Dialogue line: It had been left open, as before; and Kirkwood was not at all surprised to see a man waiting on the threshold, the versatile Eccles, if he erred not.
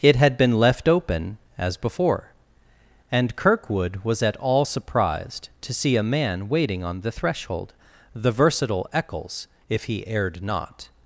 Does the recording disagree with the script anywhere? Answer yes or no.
yes